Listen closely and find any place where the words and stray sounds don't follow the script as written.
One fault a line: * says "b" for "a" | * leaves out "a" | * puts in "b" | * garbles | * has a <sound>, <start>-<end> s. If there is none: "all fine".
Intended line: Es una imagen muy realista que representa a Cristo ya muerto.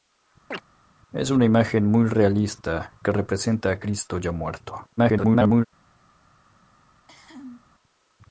* has a chirp, 0.5-0.6 s
* garbles
* has a cough, 6.9-7.6 s